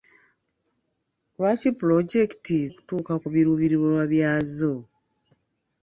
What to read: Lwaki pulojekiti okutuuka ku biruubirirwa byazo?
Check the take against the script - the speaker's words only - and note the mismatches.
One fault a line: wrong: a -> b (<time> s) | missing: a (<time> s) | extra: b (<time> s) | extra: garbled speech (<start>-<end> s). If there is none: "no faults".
no faults